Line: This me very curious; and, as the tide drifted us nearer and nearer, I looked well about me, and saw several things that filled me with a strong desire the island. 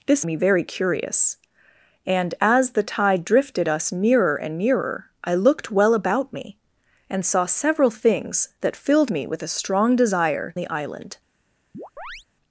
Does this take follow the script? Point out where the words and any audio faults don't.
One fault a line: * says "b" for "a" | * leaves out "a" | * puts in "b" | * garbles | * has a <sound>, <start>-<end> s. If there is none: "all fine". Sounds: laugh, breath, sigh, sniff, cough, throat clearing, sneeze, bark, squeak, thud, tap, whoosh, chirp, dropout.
* has a chirp, 11.7-12.2 s